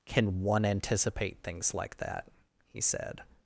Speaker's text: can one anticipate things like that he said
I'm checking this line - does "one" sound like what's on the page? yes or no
yes